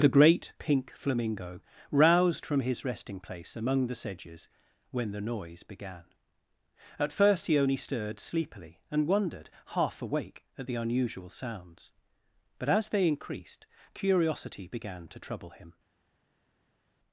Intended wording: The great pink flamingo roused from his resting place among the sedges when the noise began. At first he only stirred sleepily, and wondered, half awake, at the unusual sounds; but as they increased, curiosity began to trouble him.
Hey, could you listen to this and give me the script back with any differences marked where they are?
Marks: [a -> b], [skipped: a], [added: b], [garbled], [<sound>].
The great pink flamingo roused from his resting place among the sedges when the noise began. At first he only stirred sleepily, and wondered, half awake, at the unusual sounds; but as they increased, curiosity began to trouble him.